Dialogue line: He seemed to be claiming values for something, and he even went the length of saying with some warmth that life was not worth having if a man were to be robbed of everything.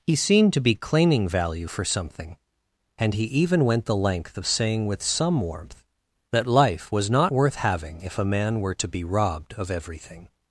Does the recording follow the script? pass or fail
fail